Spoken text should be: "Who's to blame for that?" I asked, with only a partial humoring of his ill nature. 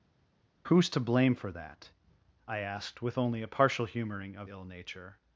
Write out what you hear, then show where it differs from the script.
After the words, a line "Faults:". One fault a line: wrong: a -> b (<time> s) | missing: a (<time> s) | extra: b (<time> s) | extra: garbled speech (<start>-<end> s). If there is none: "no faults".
"Who's to blame for that?" I asked, with only a partial humoring of ill nature.
Faults:
missing: his (4.5 s)